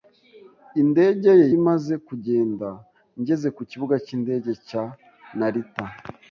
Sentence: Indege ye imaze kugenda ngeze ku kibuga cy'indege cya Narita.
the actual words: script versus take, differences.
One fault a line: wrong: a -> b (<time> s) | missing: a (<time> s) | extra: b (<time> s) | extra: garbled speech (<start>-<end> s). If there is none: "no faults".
no faults